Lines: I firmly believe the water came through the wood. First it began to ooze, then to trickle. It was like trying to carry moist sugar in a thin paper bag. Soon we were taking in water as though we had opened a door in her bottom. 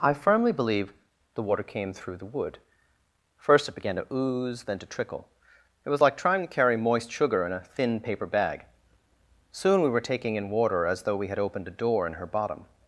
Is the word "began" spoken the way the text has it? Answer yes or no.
yes